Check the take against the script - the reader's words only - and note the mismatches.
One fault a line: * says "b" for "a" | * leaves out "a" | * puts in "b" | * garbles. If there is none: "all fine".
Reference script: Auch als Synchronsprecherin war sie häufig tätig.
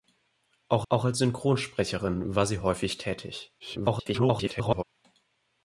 * puts in "auch"
* garbles